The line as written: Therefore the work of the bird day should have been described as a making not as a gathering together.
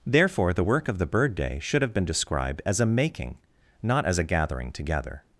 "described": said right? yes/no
yes